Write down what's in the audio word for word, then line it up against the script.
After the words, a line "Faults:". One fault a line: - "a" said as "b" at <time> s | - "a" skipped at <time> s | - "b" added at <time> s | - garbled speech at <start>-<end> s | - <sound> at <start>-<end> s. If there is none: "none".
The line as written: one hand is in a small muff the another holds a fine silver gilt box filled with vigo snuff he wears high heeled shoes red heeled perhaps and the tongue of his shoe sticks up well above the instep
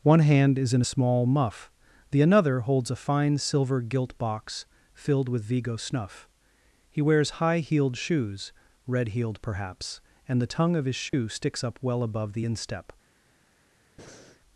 one hand is in a small muff the another holds a fine silver gilt box filled with vigo snuff he wears high heeled shoes red heeled perhaps and the tongue of his shoe sticks up well above the instep
Faults:
- dropout at 11.1-11.1 s
- breath at 14.0-14.4 s